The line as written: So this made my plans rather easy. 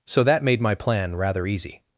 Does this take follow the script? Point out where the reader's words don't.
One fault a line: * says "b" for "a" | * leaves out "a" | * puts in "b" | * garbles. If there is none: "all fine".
* says "that" for "this"
* says "plan" for "plans"